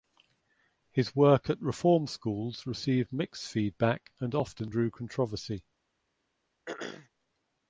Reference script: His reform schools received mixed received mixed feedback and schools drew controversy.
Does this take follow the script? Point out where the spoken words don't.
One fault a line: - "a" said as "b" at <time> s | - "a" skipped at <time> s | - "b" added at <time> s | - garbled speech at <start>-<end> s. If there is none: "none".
- "work at" added at 1.1 s
- "received mixed" skipped at 3.5 s
- "schools" said as "often" at 4.3 s